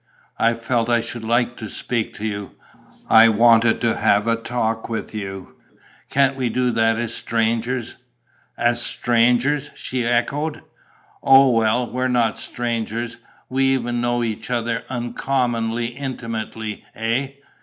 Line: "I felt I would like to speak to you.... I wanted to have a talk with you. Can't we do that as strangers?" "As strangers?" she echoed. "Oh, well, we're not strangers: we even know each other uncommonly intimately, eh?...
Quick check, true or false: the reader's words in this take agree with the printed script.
false